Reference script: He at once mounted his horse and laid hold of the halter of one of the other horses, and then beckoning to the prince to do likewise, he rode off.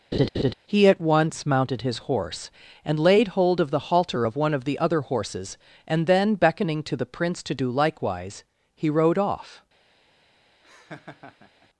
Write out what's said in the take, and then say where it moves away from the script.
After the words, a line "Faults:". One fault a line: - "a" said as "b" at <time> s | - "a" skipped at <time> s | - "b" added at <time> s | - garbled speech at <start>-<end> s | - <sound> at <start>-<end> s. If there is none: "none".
He at once mounted his horse and laid hold of the halter of one of the other horses, and then beckoning to the prince to do likewise, he rode off.
Faults:
- laugh at 0.1-0.5 s
- laugh at 10.6-11.7 s